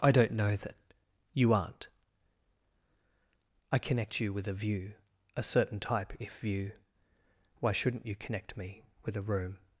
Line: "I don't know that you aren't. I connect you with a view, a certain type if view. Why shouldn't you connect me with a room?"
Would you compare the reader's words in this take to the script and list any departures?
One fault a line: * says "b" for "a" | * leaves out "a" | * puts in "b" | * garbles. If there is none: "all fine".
all fine